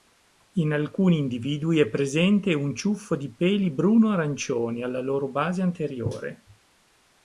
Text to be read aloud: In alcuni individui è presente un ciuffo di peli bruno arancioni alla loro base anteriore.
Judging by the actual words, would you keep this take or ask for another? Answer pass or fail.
pass